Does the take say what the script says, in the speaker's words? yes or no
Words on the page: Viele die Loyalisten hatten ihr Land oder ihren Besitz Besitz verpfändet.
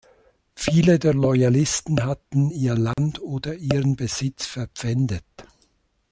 no